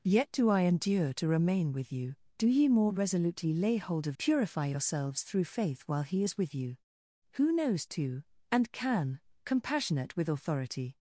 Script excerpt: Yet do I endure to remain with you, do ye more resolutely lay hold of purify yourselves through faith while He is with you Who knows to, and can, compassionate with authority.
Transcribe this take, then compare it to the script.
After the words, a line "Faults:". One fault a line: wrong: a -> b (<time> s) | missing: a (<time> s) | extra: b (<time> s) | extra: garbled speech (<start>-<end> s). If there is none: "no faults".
Yet do I endure to remain with you, do ye more resolutely lay hold of purify yourselves through faith while He is with you Who knows to, and can, compassionate with authority.
Faults:
no faults